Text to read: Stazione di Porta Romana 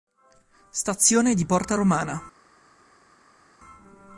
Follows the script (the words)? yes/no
yes